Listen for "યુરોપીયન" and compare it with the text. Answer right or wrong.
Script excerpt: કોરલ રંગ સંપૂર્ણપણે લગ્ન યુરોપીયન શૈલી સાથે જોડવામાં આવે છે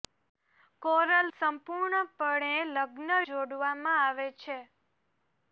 wrong